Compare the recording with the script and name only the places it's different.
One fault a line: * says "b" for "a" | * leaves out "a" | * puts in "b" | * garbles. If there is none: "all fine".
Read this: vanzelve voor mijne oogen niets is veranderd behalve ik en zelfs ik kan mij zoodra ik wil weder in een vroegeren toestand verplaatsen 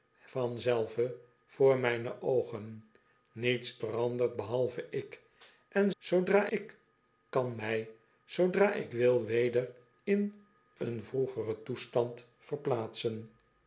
* leaves out "is"
* says "zoodra" for "zelfs"